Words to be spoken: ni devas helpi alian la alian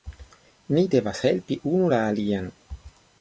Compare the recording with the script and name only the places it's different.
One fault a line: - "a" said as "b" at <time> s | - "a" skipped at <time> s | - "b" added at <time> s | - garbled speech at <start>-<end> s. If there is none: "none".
- "alian" said as "unu" at 1.7 s